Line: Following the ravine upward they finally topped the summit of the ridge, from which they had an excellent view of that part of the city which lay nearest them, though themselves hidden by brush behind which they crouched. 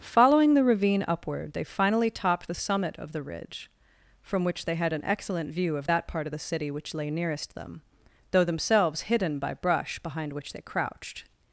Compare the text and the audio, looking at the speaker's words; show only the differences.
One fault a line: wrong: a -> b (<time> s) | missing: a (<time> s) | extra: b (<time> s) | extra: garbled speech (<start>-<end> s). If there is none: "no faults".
no faults